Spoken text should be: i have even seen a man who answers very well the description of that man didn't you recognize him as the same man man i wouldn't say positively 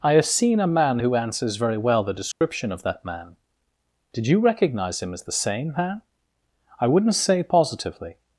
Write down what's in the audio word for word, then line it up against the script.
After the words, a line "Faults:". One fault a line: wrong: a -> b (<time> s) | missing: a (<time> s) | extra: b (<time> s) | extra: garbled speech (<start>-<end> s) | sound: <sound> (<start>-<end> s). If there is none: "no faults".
i have seen a man who answers very well the description of that man did you recognize him as the same man i wouldn't say positively
Faults:
missing: even (0.2 s)
sound: dropout (2.3-2.4 s)
wrong: didn't -> did (4.1 s)
missing: man (6.0 s)